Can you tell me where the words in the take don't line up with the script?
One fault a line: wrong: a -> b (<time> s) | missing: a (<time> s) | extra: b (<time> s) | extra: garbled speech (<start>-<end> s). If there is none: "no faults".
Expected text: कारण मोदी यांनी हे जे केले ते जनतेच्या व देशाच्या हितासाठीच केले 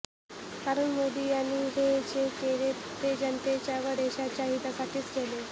no faults